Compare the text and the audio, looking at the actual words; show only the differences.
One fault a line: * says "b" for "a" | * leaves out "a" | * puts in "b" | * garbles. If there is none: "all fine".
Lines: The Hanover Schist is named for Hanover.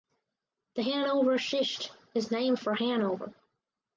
all fine